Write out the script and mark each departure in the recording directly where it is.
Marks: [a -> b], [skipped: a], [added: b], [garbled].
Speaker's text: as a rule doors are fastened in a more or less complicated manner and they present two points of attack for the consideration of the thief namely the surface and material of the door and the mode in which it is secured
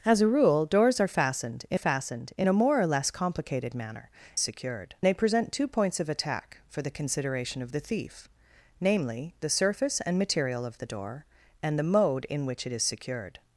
as a rule doors are fastened in [added: fastened in] a more or less complicated manner [and -> secured] they present two points of attack for the consideration of the thief namely the surface and material of the door and the mode in which it is secured